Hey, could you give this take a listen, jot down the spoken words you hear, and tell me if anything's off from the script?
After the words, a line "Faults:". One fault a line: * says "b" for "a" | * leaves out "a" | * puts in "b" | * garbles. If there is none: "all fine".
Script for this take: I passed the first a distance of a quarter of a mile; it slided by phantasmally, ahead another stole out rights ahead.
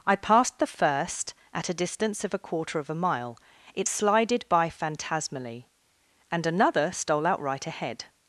I passed the first at a distance of a quarter of a mile; it slided by phantasmally, and another stole out right ahead.
Faults:
* puts in "at"
* says "and" for "ahead"
* says "right" for "rights"